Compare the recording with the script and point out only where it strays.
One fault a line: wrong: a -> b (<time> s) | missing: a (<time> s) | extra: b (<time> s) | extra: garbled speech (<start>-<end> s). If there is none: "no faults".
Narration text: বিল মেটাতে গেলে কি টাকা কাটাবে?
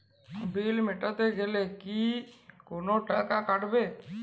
extra: কোনো (2.7 s)